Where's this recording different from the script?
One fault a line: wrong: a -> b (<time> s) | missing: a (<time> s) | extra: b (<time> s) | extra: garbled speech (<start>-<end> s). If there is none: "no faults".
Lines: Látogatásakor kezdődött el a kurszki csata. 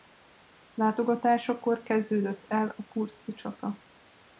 no faults